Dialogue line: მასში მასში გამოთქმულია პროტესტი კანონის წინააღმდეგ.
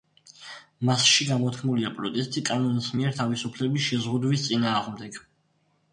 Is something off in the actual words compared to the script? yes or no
yes